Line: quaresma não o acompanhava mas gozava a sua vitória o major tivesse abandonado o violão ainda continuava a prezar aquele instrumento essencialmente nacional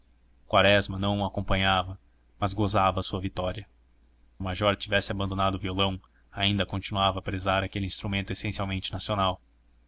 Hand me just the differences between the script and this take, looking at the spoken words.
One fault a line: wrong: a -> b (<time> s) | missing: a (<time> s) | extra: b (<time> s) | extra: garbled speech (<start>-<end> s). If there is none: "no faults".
no faults